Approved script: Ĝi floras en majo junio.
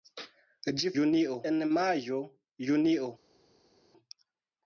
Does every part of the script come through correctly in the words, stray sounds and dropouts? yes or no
no